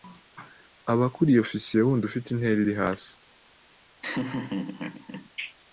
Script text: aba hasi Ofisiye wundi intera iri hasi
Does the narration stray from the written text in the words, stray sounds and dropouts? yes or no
yes